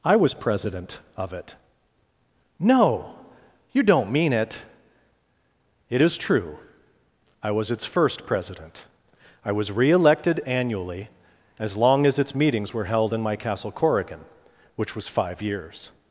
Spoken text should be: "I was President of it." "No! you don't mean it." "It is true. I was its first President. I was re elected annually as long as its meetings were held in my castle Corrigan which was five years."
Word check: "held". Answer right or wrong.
right